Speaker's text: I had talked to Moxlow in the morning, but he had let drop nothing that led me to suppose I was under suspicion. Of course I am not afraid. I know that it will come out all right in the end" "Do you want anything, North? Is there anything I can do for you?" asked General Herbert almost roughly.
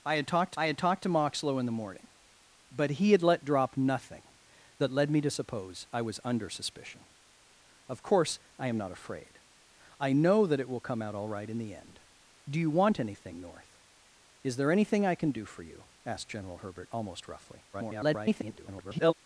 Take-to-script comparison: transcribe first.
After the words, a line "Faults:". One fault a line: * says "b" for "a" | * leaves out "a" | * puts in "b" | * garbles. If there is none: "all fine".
I had talked I had talked to Moxlow in the morning, but he had let drop nothing that led me to suppose I was under suspicion. Of course I am not afraid. I know that it will come out all right in the end" "Do you want anything, North? Is there anything I can do for you?" asked General Herbert almost roughly. [garbled]
Faults:
* puts in "I had talked"
* garbles